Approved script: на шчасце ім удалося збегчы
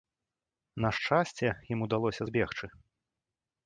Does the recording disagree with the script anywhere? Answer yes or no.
no